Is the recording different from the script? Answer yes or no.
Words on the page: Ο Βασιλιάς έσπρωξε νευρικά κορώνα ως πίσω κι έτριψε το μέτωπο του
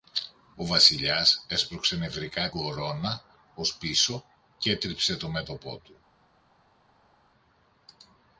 no